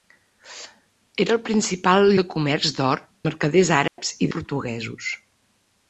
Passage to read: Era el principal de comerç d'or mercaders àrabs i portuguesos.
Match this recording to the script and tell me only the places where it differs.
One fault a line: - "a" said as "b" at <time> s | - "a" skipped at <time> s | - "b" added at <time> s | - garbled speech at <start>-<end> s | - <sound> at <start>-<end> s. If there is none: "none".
- dropout at 3.9-4.0 s